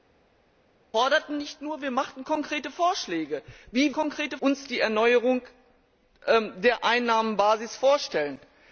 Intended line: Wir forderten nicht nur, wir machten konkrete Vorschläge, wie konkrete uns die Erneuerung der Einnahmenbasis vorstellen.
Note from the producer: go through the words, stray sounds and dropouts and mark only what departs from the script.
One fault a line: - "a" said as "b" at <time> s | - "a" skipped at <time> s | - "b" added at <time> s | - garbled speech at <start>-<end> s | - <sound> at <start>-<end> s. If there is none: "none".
none